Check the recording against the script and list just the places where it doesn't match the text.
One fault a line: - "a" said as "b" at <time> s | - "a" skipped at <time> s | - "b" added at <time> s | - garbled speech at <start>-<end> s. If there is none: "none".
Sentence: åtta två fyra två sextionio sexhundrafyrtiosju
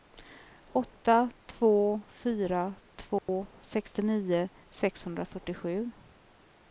none